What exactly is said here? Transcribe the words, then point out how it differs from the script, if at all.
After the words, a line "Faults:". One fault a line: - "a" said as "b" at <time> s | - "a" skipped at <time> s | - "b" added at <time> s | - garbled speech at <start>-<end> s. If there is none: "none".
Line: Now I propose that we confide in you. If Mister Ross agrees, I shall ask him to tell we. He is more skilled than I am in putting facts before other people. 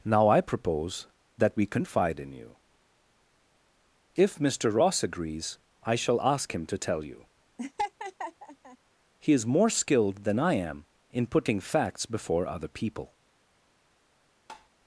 Now I propose that we confide in you. If Mister Ross agrees, I shall ask him to tell you. He is more skilled than I am in putting facts before other people.
Faults:
- "we" said as "you" at 7.0 s